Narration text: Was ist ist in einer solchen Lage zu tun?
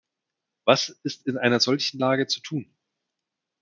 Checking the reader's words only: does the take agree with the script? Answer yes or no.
no